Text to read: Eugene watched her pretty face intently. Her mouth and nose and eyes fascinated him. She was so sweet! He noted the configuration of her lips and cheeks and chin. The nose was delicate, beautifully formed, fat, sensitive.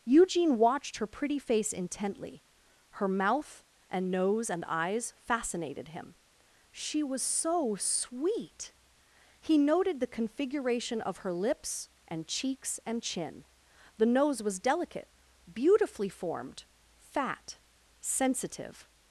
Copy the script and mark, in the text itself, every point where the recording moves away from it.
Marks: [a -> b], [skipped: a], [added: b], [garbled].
Eugene watched her pretty face intently. Her mouth and nose and eyes fascinated him. She was so sweet! He noted the configuration of her lips and cheeks and chin. The nose was delicate, beautifully formed, fat, sensitive.